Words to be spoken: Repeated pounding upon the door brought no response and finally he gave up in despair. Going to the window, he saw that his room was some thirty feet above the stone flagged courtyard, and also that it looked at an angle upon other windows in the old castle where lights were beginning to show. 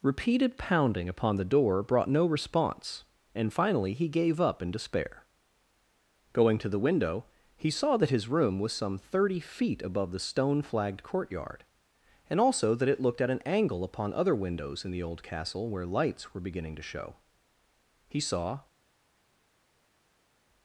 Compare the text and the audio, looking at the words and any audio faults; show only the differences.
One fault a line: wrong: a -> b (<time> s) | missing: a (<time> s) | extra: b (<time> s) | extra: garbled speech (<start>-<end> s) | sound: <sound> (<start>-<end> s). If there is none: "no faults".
extra: He saw (18.1 s)